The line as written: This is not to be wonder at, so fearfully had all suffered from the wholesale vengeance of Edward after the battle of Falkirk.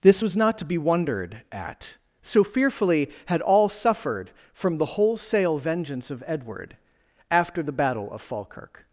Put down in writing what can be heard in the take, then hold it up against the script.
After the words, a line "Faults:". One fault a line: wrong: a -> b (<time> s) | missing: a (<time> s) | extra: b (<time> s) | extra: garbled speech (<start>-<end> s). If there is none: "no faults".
This was not to be wondered at, so fearfully had all suffered from the wholesale vengeance of Edward after the battle of Falkirk.
Faults:
wrong: is -> was (0.2 s)
wrong: wonder -> wondered (0.8 s)